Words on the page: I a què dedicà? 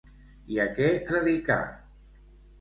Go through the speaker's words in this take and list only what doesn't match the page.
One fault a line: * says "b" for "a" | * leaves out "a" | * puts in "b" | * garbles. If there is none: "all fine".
all fine